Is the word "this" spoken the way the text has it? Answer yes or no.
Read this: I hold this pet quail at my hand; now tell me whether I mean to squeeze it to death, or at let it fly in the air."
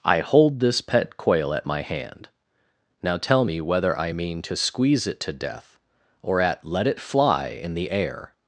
yes